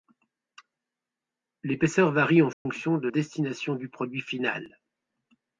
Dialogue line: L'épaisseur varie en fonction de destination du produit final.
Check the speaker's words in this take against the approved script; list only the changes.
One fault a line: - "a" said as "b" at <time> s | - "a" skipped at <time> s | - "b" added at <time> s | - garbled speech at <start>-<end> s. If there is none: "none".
none